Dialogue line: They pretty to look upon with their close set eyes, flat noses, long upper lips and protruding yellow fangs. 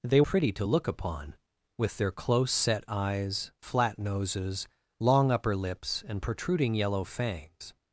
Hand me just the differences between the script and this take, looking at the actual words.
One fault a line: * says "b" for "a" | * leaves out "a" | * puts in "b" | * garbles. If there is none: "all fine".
all fine